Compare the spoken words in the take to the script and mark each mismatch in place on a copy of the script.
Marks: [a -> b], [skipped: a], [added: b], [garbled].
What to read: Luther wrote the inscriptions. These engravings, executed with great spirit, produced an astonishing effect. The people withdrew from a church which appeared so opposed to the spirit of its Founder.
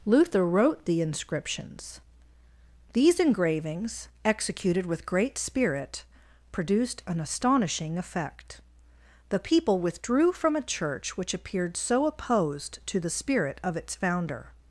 Luther wrote the inscriptions. These engravings, executed with great spirit, produced an astonishing effect. The people withdrew from a church which appeared so opposed to the spirit of its Founder.